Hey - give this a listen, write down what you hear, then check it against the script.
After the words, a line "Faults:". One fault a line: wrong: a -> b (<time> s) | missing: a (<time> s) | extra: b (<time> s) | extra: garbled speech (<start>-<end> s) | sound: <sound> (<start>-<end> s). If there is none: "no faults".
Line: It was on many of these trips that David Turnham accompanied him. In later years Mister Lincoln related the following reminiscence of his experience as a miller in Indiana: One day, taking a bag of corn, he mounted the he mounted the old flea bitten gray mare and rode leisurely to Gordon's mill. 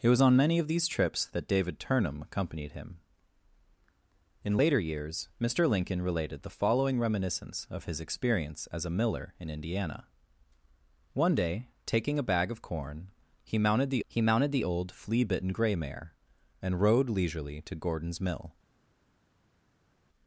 It was on many of these trips that David Turnham accompanied him. In later years Mister Lincoln related the following reminiscence of his experience as a miller in Indiana: One day, taking a bag of corn, he mounted the he mounted the old flea bitten gray mare and rode leisurely to Gordon's mill.
Faults:
no faults